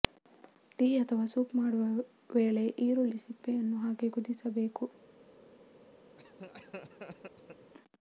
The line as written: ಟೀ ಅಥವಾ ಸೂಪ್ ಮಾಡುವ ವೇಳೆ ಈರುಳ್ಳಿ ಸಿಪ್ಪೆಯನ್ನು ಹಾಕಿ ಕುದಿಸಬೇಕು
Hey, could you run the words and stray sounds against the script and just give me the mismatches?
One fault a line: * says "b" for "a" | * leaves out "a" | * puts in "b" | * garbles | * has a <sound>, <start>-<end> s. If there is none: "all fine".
* has a laugh, 6.2-7.7 s